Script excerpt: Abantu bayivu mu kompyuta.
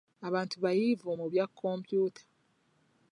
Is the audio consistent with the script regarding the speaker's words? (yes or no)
no